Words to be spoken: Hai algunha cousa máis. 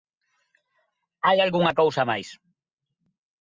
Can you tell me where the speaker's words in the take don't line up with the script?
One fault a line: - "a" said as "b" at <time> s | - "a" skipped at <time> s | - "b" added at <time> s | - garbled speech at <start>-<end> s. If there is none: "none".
none